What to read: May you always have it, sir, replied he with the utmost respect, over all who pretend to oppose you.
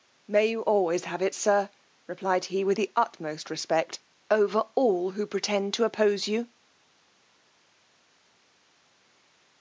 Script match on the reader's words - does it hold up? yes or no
yes